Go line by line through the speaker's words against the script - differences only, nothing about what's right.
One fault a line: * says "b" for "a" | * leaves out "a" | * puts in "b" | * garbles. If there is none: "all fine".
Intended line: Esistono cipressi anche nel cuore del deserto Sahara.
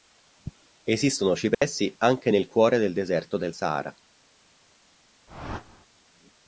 * puts in "del"